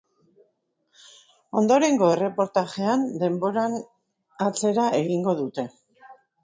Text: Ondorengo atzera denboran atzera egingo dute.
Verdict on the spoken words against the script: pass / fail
fail